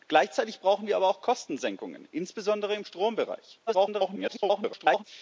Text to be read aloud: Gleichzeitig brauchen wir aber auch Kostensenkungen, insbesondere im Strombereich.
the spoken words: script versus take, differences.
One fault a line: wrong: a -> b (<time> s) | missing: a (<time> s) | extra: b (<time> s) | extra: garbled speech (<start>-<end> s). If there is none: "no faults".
extra: garbled speech (3.7-5.0 s)